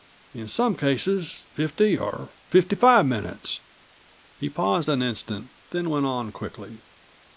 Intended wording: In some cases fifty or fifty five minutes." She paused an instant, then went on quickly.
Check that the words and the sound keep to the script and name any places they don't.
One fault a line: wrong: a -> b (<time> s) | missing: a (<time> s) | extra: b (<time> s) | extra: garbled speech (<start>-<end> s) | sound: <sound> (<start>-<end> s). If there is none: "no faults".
wrong: She -> He (4.4 s)